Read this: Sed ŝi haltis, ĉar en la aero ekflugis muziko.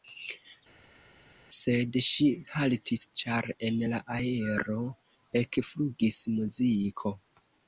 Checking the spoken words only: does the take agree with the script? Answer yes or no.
yes